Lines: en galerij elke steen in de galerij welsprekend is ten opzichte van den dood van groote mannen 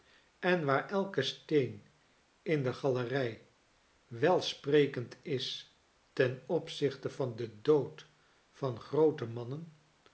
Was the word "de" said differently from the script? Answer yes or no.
no